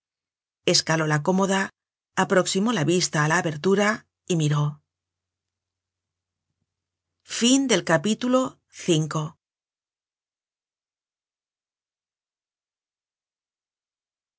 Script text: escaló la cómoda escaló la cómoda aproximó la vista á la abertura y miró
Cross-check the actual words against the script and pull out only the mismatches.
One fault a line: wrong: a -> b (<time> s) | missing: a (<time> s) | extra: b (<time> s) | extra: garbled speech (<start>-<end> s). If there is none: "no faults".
missing: escaló la cómoda (1.6 s)